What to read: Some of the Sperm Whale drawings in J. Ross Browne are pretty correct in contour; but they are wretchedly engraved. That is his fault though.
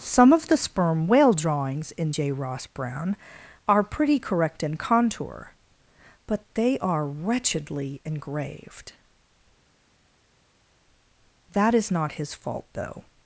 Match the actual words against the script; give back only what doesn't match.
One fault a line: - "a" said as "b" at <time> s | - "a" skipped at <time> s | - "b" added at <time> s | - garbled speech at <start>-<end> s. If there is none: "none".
- "not" added at 11.9 s